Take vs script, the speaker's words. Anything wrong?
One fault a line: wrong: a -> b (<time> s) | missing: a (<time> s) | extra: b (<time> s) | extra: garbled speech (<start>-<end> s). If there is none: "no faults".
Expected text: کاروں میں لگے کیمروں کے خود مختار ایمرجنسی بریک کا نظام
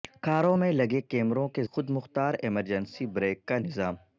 no faults